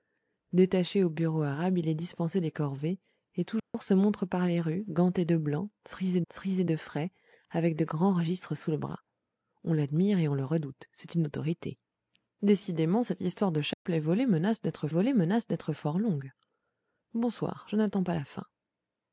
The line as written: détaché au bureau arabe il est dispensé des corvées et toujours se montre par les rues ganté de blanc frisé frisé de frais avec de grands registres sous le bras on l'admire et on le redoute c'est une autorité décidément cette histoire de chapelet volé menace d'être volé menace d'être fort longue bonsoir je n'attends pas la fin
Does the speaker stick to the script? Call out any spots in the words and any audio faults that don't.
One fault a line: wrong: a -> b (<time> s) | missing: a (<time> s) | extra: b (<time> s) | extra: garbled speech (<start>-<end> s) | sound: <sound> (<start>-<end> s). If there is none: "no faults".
sound: dropout (3.6-3.7 s)
sound: dropout (13.7-13.9 s)